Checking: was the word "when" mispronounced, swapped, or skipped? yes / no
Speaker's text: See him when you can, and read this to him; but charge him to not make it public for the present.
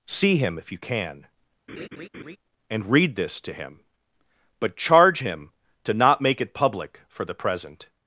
yes